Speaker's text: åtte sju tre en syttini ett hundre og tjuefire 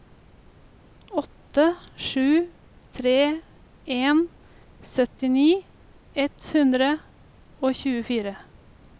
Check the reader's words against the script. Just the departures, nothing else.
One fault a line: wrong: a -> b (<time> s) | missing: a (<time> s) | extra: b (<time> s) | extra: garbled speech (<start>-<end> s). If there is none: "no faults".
no faults